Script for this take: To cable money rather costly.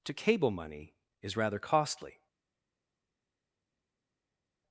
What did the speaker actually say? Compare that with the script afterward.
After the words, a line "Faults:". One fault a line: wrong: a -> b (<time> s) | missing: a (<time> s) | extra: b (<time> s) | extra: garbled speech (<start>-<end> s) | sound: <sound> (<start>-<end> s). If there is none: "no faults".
To cable money is rather costly.
Faults:
extra: is (1.2 s)